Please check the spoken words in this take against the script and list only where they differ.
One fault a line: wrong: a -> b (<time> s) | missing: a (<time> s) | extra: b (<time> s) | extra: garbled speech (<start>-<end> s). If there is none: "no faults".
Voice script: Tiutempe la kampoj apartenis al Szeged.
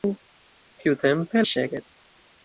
missing: la kampoj apartenis (1.4 s)